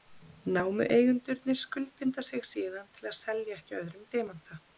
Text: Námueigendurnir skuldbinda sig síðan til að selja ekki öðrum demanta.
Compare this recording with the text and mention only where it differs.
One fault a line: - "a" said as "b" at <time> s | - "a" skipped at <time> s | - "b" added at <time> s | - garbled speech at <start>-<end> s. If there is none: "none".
none